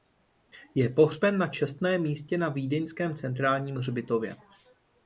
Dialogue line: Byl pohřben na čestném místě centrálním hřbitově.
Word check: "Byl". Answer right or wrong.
wrong